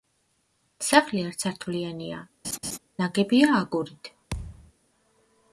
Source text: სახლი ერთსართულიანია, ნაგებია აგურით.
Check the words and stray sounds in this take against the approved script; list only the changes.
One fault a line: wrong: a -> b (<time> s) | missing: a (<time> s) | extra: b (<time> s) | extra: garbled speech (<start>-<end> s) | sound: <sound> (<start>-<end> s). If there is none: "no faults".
sound: laugh (2.4-2.8 s)
sound: thud (4.3-4.7 s)